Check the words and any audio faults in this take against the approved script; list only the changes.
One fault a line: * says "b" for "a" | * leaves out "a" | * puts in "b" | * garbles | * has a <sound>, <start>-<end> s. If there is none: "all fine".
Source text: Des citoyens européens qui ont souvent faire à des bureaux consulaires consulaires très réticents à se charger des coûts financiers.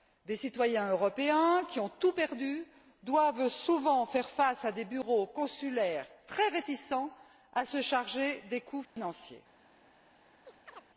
* puts in "tout perdu doivent"
* puts in "face"
* leaves out "consulaires"
* has a dropout, 8.9-9.0 s
* has a chirp, 10.4-10.9 s